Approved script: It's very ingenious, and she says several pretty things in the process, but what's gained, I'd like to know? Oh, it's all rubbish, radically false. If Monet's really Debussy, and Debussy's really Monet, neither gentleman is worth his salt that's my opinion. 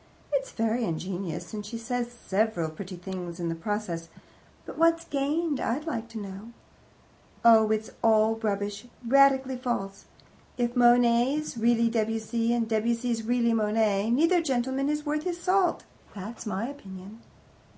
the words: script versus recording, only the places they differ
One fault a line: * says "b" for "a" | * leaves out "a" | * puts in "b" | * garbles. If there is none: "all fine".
all fine